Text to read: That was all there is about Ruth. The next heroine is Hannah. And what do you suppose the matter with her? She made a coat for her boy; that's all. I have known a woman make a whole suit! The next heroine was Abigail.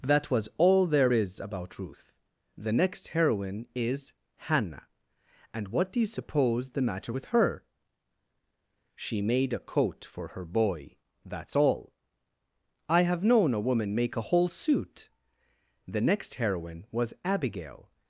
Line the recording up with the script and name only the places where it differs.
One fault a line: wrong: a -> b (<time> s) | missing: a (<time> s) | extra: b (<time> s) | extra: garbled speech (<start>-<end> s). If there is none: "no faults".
no faults